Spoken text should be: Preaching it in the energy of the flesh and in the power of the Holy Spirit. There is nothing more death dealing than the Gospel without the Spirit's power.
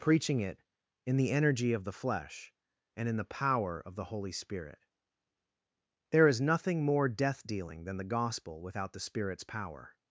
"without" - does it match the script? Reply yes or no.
yes